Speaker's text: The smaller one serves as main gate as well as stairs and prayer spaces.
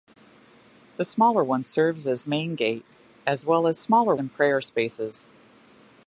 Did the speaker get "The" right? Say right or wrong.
right